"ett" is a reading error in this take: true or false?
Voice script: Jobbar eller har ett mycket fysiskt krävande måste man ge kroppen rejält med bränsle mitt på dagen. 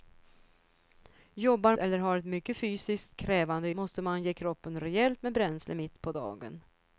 false